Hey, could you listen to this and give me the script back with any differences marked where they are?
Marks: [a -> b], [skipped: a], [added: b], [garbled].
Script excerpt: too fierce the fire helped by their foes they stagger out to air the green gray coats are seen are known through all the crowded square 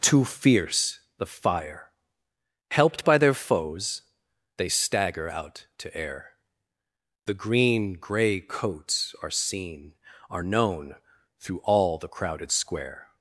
too fierce the fire helped by their foes they stagger out to air the green gray coats are seen are known through all the crowded square